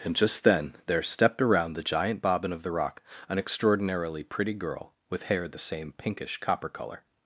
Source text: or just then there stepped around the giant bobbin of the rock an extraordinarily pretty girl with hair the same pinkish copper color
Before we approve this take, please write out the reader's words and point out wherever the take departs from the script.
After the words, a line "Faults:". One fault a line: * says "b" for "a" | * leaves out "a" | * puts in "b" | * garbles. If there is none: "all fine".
and just then there stepped around the giant bobbin of the rock an extraordinarily pretty girl with hair the same pinkish copper color
Faults:
* says "and" for "or"